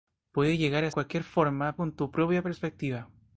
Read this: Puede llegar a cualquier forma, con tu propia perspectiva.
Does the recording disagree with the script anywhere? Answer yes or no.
no